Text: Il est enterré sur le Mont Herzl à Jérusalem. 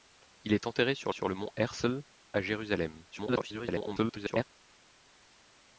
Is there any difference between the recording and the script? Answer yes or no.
yes